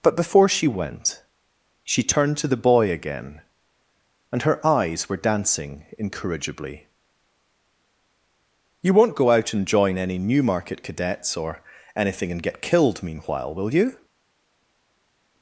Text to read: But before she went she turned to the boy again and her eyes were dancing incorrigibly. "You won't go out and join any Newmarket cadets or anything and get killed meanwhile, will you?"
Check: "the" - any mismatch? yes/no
no